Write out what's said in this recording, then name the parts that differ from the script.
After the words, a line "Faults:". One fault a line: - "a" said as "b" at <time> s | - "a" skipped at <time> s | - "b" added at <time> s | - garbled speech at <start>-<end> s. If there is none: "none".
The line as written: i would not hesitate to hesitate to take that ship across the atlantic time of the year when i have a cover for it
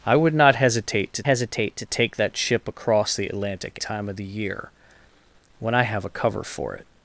i would not hesitate to hesitate to take that ship across the atlantic time of the year when i have a cover for it
Faults:
none